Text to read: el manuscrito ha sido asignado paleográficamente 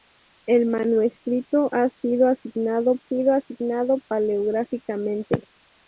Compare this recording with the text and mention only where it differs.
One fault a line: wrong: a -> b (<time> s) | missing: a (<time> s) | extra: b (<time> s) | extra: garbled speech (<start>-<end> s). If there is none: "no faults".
extra: sido asignado (3.1 s)